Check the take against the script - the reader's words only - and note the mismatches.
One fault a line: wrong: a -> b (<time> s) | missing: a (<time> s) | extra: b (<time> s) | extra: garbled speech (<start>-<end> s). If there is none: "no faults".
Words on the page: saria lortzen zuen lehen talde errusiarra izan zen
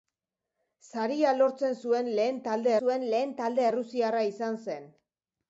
extra: zuen lehen talde (2.8 s)